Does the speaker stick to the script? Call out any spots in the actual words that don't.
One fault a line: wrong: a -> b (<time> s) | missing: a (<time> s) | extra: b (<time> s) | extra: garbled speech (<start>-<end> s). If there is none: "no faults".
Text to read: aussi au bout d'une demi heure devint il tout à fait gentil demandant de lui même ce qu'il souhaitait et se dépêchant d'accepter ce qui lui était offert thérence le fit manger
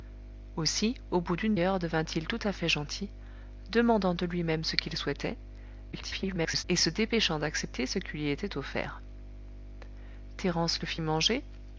missing: demi (1.6 s)
extra: garbled speech (5.9-6.6 s)